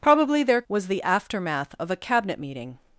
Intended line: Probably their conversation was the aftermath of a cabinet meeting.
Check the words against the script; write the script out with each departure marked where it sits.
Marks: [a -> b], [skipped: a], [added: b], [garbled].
Probably their [skipped: conversation] was the aftermath of a cabinet meeting.